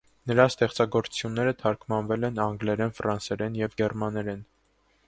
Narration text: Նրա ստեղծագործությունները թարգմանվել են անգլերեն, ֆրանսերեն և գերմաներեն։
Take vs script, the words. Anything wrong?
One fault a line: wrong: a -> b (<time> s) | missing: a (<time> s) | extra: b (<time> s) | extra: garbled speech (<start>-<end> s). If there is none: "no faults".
no faults